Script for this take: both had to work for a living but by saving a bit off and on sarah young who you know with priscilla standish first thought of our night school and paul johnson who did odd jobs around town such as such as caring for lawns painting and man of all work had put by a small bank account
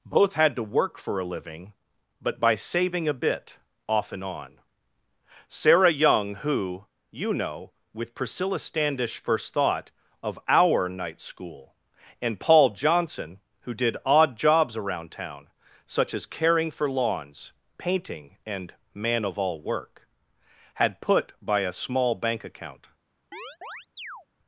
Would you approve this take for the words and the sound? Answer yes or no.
no